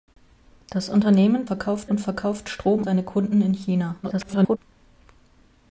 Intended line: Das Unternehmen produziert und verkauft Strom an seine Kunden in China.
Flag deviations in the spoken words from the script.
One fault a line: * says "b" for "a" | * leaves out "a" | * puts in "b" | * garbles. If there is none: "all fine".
* says "verkauft" for "produziert"
* leaves out "an"
* garbles